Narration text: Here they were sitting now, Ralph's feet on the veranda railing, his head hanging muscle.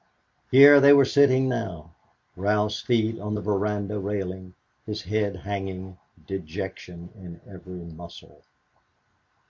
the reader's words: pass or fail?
fail